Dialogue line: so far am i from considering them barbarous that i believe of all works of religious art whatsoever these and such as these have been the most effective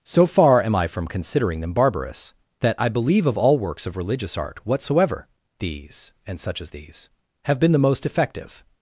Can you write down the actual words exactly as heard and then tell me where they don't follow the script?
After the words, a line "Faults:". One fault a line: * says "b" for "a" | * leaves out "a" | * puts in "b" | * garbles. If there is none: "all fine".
so far am i from considering them barbarous that i believe of all works of religious art whatsoever these and such as these have been the most effective
Faults:
all fine